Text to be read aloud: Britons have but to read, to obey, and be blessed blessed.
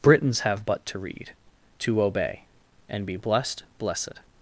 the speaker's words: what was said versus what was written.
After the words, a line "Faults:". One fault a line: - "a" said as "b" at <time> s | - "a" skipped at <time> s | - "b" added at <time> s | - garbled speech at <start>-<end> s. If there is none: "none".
Britons have but to read, to obey, and be blessed blessed.
Faults:
none